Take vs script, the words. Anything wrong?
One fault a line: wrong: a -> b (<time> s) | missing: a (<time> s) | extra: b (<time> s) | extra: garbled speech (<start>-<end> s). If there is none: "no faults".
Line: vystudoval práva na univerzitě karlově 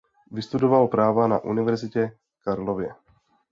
no faults